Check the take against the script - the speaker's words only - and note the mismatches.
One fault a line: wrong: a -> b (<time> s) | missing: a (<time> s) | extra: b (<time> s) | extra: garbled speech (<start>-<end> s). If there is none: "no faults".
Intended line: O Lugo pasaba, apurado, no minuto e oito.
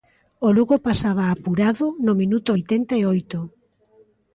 extra: oitenta (2.5 s)